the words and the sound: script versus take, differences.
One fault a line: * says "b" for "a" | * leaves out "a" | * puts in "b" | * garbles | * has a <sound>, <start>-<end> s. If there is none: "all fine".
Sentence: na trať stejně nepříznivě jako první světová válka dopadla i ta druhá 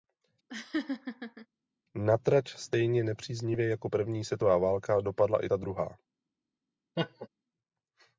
* has a laugh, 0.5-1.5 s
* has a laugh, 7.0-7.3 s